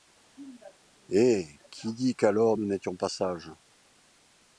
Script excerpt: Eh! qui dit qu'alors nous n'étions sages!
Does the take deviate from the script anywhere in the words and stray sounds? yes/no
yes